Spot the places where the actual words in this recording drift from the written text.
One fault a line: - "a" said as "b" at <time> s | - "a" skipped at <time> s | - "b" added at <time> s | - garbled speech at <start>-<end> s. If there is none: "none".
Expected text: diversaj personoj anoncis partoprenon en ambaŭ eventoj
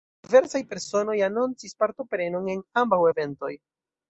none